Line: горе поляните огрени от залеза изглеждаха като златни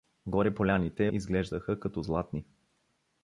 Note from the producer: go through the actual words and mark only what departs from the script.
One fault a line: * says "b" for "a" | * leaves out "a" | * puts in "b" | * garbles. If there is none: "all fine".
* leaves out "огрени от залеза"